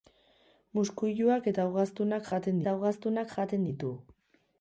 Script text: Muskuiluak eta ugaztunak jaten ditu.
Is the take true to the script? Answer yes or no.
no